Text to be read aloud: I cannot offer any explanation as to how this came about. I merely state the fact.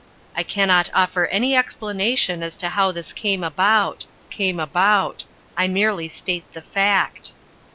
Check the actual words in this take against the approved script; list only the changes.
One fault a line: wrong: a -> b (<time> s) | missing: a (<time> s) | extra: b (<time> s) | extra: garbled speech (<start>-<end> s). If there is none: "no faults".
extra: came about (4.3 s)